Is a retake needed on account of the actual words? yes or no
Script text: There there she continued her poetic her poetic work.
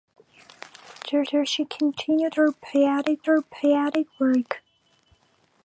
no